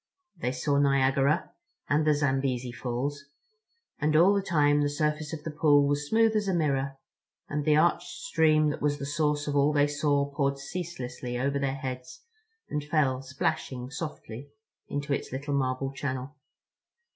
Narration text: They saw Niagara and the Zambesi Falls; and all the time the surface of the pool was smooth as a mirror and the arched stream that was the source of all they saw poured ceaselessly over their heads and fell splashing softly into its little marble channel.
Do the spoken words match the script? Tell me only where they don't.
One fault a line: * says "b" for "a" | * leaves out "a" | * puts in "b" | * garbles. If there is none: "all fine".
all fine